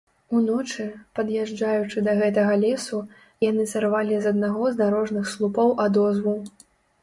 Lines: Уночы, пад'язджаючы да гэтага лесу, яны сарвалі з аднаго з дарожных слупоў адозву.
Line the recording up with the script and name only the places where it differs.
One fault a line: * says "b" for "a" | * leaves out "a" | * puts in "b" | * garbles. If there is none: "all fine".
all fine